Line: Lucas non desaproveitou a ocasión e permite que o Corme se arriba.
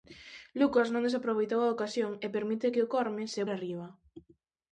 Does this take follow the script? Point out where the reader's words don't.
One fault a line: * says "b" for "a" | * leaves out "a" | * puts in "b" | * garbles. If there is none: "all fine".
all fine